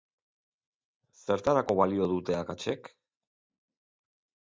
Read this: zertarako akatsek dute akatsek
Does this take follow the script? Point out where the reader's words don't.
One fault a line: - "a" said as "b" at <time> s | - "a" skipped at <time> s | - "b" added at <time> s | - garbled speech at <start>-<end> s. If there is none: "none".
- "akatsek" said as "balio" at 1.8 s